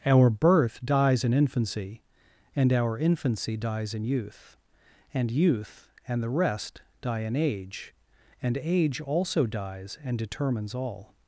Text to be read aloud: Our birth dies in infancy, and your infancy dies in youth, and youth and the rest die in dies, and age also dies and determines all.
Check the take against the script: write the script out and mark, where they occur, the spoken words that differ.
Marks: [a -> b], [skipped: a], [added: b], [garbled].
Our birth dies in infancy, and [your -> our] infancy dies in youth, and youth and the rest die in [dies, -> age] and age also dies and determines all.